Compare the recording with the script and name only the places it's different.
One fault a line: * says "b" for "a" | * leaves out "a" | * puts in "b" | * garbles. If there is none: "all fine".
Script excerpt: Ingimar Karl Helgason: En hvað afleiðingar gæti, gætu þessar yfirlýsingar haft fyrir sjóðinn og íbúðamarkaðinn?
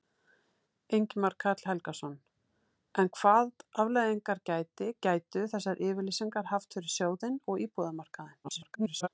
* garbles